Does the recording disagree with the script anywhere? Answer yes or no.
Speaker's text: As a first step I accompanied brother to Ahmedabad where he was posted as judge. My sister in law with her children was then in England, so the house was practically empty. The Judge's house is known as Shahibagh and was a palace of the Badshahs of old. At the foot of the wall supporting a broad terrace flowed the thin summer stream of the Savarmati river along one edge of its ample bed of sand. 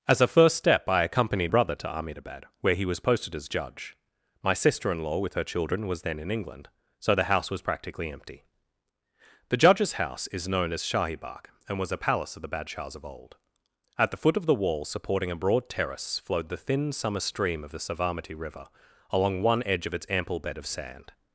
no